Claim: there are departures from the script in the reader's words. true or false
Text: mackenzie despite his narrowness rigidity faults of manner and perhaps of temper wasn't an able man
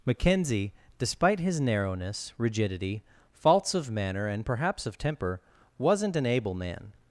false